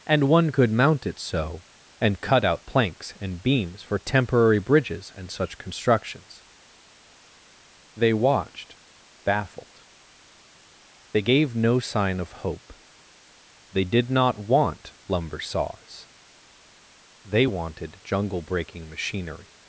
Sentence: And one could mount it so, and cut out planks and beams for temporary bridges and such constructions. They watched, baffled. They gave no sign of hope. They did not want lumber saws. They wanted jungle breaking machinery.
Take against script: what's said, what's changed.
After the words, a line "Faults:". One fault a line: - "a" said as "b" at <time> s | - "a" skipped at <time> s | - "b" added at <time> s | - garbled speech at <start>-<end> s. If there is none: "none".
And one could mount it so, and cut out planks and beams for temporary bridges and such constructions. They watched, baffled. They gave no sign of hope. They did not want lumber saws. They wanted jungle breaking machinery.
Faults:
none